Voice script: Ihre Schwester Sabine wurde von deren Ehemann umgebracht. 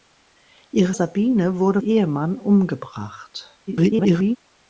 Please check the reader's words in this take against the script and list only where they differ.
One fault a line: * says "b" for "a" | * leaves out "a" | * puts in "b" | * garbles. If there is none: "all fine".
* leaves out "Schwester"
* leaves out "von deren"
* garbles